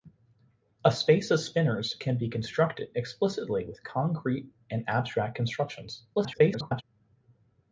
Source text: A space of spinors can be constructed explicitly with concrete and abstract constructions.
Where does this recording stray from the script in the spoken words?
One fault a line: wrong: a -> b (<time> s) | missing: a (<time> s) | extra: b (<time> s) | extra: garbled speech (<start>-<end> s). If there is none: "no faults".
extra: garbled speech (6.1-6.8 s)